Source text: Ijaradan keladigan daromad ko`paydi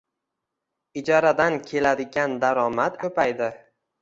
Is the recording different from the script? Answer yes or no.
no